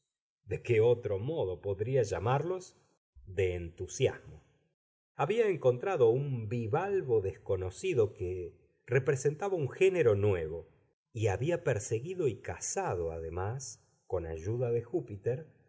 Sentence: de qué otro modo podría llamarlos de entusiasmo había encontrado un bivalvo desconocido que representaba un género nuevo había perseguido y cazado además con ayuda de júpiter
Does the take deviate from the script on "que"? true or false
false